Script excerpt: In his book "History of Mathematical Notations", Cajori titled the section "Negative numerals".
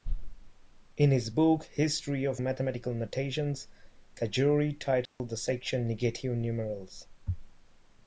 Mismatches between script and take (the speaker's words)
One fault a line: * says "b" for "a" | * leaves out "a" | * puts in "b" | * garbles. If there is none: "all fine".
all fine